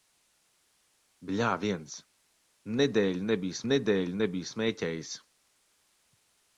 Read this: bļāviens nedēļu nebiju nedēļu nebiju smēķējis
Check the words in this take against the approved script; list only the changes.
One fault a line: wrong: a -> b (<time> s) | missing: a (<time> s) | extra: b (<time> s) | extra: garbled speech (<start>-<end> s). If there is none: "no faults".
no faults